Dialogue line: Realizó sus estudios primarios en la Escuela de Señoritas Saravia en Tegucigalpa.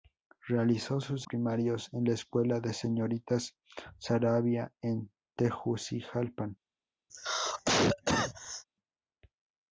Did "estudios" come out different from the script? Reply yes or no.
yes